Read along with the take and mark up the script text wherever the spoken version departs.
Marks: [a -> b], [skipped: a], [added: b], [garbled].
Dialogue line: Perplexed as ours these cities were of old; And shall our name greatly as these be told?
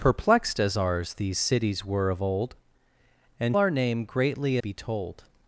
Perplexed as ours these cities were of old; And [skipped: shall] our name greatly [skipped: as these] be told?